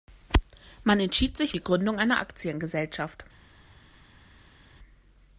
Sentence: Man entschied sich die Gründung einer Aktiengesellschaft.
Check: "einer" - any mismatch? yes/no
no